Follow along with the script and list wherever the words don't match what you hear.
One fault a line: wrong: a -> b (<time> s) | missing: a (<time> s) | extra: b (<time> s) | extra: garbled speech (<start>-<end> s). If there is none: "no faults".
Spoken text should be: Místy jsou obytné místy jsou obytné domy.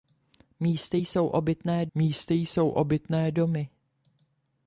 no faults